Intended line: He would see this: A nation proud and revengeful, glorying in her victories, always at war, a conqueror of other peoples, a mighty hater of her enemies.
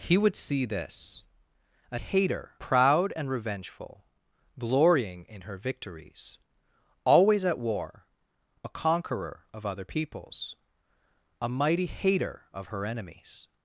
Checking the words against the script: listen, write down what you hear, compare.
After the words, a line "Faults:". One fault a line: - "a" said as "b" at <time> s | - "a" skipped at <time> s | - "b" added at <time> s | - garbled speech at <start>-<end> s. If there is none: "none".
He would see this: A hater proud and revengeful, glorying in her victories, always at war, a conqueror of other peoples, a mighty hater of her enemies.
Faults:
- "nation" said as "hater" at 2.0 s